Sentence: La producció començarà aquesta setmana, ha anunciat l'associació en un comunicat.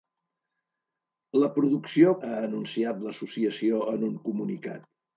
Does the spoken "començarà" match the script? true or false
false